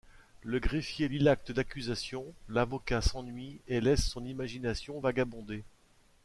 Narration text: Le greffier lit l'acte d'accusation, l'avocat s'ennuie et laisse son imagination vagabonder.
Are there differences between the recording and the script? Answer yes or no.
no